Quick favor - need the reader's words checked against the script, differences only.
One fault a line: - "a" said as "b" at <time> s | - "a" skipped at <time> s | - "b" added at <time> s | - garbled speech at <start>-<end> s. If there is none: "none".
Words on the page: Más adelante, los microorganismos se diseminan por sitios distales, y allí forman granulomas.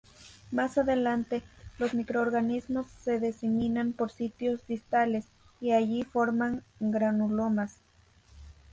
none